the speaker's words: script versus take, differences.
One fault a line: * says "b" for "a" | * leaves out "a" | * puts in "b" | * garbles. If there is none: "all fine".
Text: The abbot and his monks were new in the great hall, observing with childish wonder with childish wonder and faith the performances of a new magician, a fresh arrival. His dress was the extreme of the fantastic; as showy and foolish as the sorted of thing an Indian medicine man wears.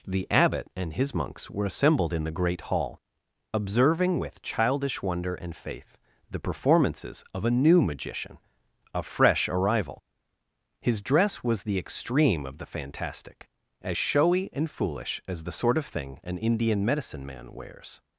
* says "assembled" for "new"
* leaves out "with childish wonder"
* says "sort" for "sorted"